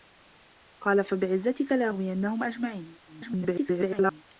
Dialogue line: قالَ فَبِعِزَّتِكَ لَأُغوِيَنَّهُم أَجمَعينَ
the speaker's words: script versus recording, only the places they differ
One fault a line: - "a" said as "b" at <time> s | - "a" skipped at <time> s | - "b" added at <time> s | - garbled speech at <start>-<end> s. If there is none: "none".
- garbled speech at 3.1-4.2 s